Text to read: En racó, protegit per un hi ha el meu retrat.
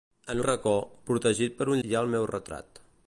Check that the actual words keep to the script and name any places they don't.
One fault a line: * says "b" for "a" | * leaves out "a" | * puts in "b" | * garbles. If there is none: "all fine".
all fine